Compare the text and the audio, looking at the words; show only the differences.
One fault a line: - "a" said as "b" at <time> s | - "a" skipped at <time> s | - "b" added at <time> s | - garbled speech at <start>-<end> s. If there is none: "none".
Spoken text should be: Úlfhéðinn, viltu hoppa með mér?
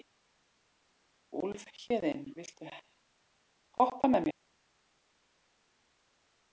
none